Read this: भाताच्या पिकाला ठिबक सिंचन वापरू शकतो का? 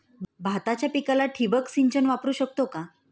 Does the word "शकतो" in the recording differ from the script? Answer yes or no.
no